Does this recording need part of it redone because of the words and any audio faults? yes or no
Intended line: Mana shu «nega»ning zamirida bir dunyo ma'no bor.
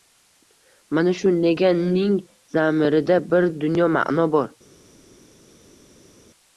no